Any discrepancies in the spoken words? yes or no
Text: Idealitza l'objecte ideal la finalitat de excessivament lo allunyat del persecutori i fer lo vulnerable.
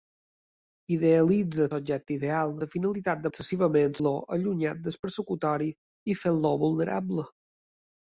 no